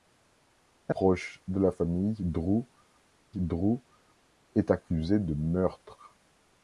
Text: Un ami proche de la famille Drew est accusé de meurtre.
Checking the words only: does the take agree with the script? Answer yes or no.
no